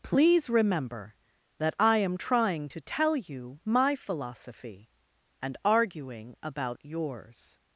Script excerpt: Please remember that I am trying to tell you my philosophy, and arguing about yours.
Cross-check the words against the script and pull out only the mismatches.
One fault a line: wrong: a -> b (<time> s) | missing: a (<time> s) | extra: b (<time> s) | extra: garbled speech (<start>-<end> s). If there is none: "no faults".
no faults